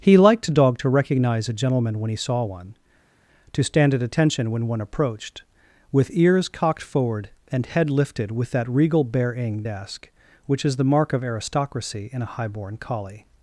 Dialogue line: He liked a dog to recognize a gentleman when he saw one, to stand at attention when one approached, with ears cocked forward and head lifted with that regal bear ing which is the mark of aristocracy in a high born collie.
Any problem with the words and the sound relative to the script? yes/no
yes